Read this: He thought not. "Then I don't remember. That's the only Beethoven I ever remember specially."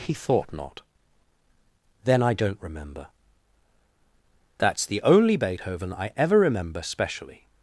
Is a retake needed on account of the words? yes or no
no